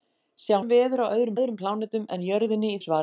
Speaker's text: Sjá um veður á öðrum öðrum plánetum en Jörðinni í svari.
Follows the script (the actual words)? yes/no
yes